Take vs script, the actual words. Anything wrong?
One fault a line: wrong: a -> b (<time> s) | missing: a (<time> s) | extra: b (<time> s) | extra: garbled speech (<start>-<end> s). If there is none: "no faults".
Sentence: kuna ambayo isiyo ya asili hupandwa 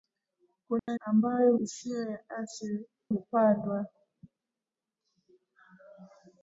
no faults